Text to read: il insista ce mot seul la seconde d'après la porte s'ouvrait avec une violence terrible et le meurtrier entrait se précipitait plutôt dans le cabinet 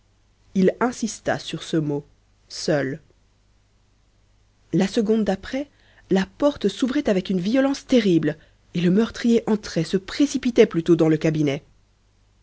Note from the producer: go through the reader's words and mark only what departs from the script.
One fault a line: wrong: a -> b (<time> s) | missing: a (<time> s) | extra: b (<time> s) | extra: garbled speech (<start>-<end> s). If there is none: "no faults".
extra: sur (1.4 s)